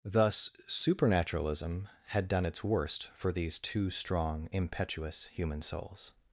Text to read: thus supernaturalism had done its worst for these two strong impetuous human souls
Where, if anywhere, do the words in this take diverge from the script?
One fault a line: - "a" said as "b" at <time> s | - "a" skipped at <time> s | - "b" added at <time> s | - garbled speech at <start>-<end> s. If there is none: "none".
none